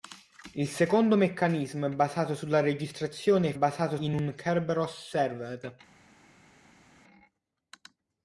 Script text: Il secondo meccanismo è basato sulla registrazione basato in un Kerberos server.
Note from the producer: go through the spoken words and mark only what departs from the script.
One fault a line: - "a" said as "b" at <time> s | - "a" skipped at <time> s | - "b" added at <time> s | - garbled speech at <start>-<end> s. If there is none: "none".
none